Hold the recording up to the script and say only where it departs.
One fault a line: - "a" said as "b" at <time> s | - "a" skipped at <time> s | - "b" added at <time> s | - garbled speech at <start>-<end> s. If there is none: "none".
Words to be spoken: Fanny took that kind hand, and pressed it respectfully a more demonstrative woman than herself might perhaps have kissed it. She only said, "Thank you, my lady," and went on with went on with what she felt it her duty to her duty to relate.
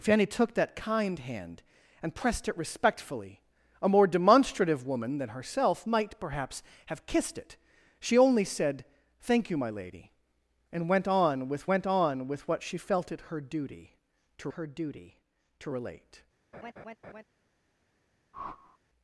none